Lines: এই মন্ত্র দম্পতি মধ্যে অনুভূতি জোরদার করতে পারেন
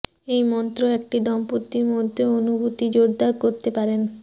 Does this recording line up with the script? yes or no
no